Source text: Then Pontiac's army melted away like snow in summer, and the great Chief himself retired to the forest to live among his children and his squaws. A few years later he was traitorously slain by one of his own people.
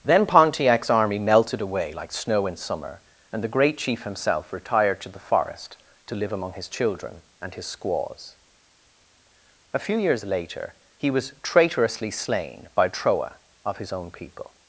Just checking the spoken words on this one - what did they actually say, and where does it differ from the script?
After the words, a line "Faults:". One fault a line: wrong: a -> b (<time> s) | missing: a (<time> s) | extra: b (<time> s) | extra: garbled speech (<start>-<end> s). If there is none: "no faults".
Then Pontiac's army melted away like snow in summer, and the great Chief himself retired to the forest to live among his children and his squaws. A few years later he was traitorously slain by troa of his own people.
Faults:
wrong: one -> troa (12.9 s)